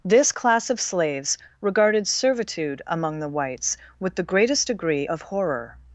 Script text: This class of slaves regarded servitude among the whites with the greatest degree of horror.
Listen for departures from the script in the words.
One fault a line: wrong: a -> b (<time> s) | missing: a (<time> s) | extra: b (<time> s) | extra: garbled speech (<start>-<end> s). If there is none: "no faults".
no faults